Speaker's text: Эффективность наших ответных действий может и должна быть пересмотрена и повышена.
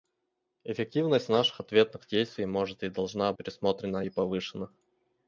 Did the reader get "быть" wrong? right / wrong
wrong